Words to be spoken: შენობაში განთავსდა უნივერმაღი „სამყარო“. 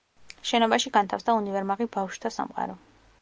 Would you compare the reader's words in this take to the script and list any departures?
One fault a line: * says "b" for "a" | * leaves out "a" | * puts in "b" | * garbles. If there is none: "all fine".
* puts in "ბავშვთა"